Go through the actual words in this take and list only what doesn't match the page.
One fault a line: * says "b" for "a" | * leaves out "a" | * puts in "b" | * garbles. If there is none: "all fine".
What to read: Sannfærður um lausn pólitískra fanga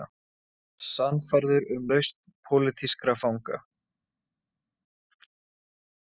all fine